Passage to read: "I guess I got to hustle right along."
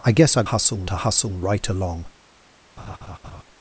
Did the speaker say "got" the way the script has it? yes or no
no